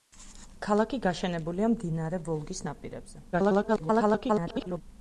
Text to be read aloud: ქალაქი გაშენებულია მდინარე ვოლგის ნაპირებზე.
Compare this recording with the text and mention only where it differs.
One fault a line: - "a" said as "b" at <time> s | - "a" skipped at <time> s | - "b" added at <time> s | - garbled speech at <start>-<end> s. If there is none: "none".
- garbled speech at 3.3-4.8 s